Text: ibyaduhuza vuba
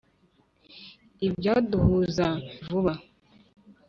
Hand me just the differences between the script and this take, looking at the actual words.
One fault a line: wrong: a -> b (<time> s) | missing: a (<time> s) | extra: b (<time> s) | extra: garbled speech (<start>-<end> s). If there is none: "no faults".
no faults